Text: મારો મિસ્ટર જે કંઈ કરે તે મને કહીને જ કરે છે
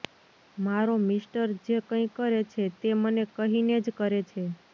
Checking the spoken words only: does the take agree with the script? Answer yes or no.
no